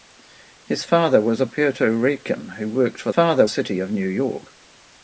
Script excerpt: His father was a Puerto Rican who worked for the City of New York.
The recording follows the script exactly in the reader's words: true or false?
false